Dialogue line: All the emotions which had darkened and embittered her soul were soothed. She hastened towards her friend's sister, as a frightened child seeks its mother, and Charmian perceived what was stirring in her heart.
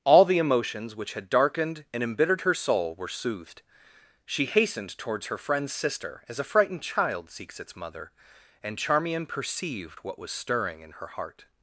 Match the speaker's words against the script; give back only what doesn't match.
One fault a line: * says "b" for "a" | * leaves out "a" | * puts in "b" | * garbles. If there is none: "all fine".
all fine